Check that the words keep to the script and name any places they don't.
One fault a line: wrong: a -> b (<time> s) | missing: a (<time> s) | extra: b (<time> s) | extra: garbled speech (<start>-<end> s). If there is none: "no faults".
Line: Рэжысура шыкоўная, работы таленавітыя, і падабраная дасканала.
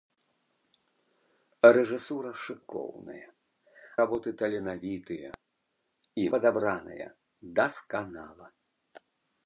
no faults